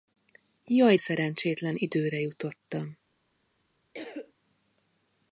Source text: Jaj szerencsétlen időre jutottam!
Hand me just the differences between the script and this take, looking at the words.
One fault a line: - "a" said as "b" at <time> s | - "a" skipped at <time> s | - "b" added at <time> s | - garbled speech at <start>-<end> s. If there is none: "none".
none